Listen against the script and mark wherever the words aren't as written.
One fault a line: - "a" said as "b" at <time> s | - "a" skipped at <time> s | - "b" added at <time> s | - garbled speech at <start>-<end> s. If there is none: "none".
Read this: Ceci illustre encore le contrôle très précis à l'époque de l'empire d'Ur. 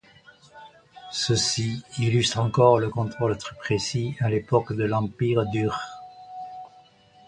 none